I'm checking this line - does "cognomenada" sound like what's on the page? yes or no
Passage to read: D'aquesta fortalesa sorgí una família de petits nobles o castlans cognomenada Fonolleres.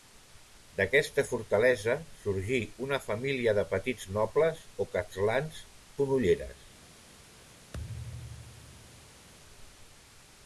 no